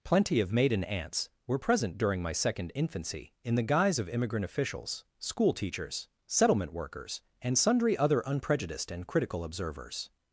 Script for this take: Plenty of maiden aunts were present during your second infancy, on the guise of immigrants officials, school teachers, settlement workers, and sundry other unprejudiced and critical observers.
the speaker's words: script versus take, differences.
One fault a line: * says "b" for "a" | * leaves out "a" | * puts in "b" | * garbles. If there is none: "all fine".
* says "my" for "your"
* says "in" for "on"
* says "immigrant" for "immigrants"